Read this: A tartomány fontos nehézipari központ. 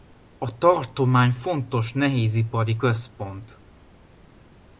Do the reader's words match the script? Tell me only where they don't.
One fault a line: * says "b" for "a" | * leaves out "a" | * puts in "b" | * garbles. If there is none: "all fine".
all fine